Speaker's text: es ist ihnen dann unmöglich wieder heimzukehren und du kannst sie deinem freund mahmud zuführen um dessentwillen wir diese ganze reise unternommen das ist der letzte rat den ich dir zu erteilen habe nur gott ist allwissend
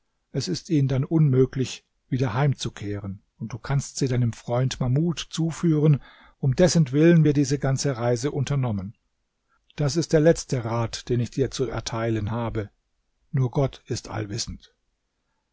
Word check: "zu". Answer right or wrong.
right